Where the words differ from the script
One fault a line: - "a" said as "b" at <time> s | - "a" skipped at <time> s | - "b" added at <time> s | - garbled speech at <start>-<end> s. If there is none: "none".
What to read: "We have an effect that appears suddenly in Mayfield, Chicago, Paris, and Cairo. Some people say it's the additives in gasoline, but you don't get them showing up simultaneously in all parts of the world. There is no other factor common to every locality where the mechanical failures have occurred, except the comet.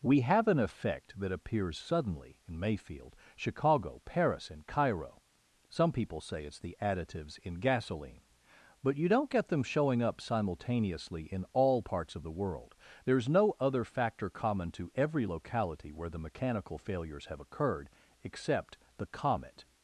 none